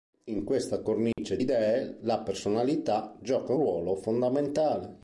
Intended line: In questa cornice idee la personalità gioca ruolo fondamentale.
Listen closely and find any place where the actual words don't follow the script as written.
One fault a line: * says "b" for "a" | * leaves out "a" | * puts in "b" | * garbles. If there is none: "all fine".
all fine